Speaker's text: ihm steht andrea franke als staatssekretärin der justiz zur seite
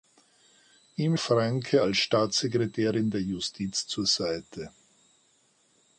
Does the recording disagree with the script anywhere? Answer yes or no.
yes